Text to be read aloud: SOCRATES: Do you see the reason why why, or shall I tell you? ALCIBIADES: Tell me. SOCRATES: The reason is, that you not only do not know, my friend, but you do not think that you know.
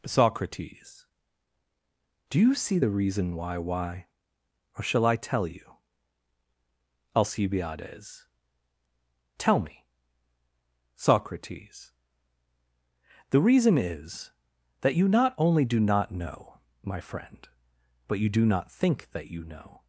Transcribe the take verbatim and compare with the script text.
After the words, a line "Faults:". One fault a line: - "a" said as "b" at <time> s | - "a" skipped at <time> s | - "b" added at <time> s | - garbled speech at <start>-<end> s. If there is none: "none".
SOCRATES: Do you see the reason why why, or shall I tell you? ALCIBIADES: Tell me. SOCRATES: The reason is, that you not only do not know, my friend, but you do not think that you know.
Faults:
none